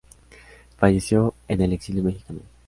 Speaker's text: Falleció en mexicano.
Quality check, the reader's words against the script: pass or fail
fail